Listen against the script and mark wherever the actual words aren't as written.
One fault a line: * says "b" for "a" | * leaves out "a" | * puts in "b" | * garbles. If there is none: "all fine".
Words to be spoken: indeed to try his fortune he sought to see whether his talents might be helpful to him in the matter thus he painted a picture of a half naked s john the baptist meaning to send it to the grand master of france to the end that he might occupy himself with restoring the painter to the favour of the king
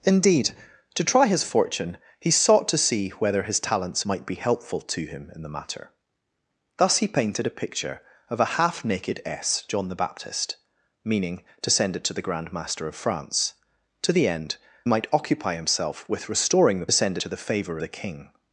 * leaves out "that he"
* says "send" for "painter"
* leaves out "of"